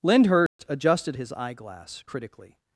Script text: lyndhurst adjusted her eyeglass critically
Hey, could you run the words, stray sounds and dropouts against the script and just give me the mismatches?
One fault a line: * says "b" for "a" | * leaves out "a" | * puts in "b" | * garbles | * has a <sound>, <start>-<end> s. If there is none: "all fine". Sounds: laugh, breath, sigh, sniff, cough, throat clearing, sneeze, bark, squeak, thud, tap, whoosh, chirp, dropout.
* has a dropout, 0.5-0.6 s
* says "his" for "her"